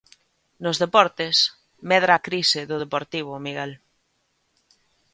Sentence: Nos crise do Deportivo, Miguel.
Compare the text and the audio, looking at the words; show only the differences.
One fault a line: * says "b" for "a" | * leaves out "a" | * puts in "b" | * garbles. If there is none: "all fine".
* puts in "deportes medra a"